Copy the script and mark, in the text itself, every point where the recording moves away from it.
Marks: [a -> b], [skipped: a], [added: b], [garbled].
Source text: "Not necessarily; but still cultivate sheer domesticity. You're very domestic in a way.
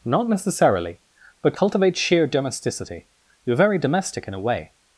"Not necessarily; but [skipped: still] cultivate sheer domesticity. You're very domestic in a way.